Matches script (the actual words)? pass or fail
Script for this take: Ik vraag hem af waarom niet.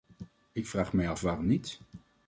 fail